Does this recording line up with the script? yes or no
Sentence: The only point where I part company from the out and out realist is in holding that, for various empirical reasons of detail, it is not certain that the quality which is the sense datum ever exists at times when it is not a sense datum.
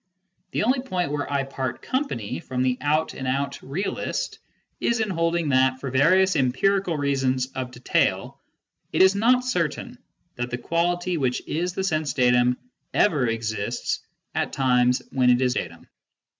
no